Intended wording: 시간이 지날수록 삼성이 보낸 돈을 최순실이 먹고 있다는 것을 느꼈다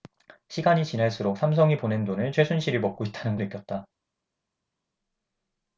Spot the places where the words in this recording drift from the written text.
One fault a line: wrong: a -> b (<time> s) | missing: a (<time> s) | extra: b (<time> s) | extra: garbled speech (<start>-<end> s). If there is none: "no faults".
missing: 것을 (3.4 s)